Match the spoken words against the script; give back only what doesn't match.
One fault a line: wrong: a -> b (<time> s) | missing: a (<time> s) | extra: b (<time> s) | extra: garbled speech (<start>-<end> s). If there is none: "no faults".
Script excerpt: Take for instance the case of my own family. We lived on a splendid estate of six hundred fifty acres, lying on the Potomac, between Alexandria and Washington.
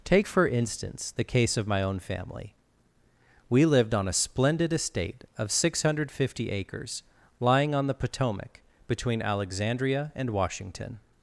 no faults